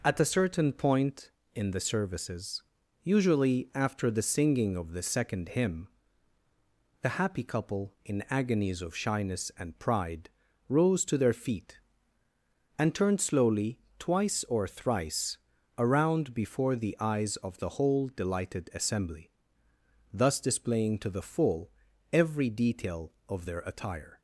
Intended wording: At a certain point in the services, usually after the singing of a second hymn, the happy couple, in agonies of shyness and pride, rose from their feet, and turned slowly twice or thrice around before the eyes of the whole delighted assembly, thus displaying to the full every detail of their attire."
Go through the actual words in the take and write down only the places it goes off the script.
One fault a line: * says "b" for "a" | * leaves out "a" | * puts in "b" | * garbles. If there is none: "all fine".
* says "the" for "a"
* says "to" for "from"